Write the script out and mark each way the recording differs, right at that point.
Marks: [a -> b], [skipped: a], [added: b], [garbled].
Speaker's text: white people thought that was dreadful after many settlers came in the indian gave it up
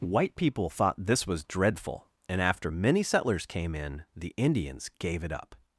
white people thought [that -> this] was dreadful [added: and] after many settlers came in the [indian -> indians] gave it up